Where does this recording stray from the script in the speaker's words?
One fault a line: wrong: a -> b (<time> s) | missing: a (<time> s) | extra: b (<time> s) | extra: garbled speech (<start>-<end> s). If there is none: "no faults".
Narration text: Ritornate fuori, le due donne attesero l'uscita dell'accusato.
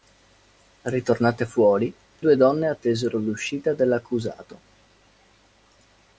missing: le (1.9 s)